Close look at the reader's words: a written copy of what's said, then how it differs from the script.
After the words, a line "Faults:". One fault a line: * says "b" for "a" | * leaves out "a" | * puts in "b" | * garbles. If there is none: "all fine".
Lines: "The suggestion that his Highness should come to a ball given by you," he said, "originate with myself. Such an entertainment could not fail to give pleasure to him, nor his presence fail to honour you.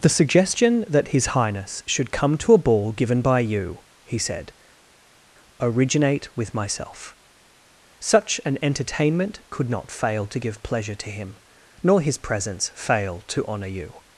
"The suggestion that his Highness should come to a ball given by you," he said, "originate with myself. Such an entertainment could not fail to give pleasure to him, nor his presence fail to honour you.
Faults:
all fine